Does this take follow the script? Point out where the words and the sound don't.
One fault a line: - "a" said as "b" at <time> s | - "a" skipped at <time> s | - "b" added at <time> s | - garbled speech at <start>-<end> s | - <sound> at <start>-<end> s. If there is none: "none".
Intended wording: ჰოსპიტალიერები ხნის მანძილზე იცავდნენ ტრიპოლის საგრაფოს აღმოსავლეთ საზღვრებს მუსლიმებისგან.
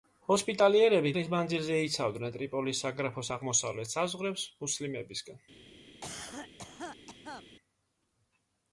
- cough at 6.0-7.5 s